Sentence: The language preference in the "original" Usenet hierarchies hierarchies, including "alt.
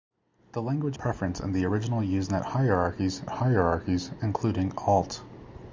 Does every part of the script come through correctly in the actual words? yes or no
yes